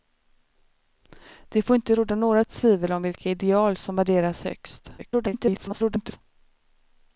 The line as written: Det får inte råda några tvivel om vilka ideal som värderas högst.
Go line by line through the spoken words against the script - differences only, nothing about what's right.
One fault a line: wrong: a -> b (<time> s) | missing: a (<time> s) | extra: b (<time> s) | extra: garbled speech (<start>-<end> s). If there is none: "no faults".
extra: garbled speech (5.0-6.2 s)